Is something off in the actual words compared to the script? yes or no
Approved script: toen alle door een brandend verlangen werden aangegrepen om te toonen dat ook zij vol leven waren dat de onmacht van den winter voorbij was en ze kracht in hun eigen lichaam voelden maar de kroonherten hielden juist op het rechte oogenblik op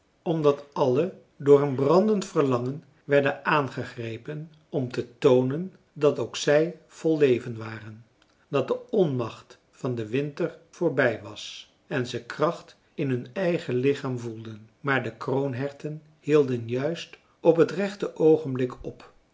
yes